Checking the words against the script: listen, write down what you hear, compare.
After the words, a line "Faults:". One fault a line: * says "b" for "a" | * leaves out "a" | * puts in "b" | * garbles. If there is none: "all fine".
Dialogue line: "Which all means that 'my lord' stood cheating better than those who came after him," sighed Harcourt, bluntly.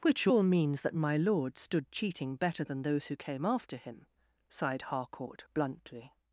"Which all means that 'my lord' stood cheating better than those who came after him," sighed Harcourt, bluntly.
Faults:
all fine